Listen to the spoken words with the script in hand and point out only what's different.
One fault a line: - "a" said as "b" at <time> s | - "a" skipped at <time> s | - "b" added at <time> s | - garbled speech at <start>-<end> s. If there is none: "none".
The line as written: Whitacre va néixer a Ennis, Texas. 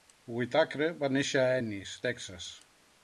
none